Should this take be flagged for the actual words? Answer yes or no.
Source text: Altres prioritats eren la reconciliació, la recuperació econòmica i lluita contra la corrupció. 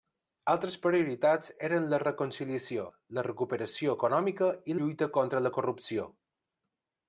no